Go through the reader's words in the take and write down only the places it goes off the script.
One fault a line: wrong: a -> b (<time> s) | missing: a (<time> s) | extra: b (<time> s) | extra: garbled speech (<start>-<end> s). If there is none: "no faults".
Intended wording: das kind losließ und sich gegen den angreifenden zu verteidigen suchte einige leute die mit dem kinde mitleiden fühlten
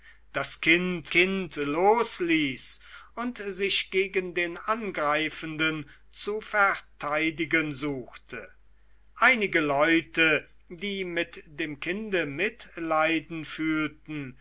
extra: kind (1.1 s)